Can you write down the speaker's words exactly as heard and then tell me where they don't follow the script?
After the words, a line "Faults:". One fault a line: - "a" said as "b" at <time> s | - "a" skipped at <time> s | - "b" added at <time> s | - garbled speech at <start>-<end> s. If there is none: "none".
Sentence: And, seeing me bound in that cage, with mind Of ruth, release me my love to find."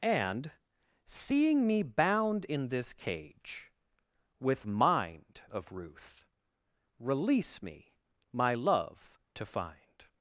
And, seeing me bound in this cage, with mind Of ruth, release me my love to find."
Faults:
- "that" said as "this" at 2.7 s